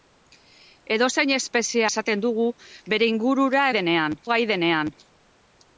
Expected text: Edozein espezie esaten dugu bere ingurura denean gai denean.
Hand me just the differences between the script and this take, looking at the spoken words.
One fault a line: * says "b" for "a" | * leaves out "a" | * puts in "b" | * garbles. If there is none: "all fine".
all fine